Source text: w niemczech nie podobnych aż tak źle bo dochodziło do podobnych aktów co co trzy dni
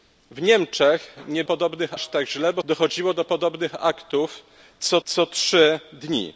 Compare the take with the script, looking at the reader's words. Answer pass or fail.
pass